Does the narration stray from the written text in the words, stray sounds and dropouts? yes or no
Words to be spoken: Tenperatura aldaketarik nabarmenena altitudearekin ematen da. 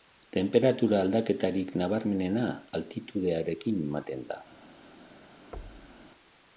yes